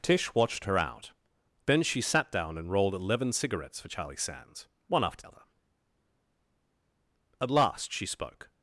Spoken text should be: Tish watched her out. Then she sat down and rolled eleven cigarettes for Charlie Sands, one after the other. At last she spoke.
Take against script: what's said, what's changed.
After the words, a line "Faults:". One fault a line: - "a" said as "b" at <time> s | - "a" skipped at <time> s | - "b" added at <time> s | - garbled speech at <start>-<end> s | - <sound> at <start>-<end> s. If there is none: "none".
Tish watched her out. Then she sat down and rolled eleven cigarettes for Charlie Sands, one after other. At last she spoke.
Faults:
- "the" skipped at 5.2 s